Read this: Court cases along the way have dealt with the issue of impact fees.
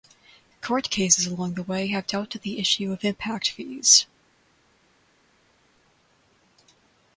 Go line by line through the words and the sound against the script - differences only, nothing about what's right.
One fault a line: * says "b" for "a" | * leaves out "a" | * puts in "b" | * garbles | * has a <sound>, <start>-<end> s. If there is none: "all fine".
all fine